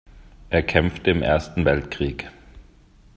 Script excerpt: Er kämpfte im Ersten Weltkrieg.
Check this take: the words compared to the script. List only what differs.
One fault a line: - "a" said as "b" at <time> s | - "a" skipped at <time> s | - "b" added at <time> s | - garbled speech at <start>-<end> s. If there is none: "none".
none